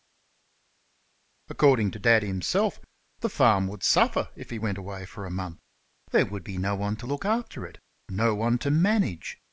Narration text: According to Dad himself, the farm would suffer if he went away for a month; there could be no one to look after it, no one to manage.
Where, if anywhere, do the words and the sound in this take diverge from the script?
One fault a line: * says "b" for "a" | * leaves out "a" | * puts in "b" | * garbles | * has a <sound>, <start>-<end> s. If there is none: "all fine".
* says "would" for "could"